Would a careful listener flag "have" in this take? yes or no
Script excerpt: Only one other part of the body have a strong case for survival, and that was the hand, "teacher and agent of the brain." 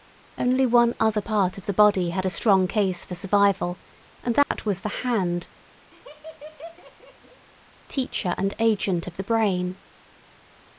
yes